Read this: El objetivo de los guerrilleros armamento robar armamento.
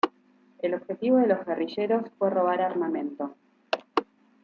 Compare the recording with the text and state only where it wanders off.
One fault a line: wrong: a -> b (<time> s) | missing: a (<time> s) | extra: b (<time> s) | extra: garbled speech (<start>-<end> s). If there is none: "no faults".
wrong: armamento -> fue (2.2 s)